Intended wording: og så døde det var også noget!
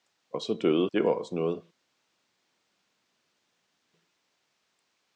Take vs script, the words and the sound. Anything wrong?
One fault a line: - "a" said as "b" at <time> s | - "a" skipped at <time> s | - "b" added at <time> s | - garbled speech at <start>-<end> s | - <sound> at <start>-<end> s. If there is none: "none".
none